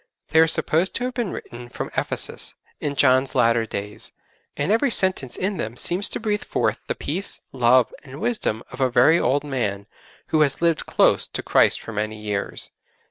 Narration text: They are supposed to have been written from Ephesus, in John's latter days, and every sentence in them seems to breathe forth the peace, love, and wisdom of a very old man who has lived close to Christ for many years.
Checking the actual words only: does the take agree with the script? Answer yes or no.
yes